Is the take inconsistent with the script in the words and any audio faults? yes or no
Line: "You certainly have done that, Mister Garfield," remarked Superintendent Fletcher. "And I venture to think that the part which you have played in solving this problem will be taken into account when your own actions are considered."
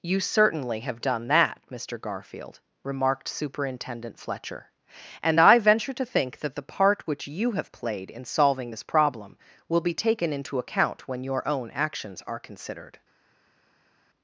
no